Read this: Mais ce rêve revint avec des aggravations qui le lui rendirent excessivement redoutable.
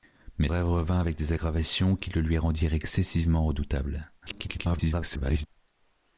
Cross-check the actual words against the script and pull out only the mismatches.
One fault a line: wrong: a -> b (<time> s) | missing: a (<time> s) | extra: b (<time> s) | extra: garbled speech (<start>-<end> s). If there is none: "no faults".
missing: ce (0.5 s)
extra: garbled speech (4.2-5.5 s)